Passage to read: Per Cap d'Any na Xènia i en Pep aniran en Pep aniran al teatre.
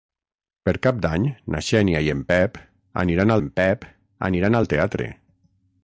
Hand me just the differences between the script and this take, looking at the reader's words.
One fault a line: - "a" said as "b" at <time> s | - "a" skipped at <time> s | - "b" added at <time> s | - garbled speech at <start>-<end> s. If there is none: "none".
none